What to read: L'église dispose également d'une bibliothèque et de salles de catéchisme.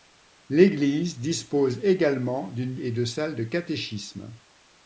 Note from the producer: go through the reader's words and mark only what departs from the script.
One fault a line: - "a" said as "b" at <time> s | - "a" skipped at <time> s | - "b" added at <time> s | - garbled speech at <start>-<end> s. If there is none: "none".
- "bibliothèque" skipped at 2.7 s